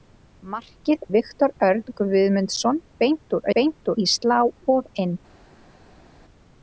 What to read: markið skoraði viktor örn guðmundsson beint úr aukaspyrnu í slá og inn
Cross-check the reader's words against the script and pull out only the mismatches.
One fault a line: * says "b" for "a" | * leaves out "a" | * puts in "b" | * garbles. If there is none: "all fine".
* leaves out "skoraði"
* says "beint" for "aukaspyrnu"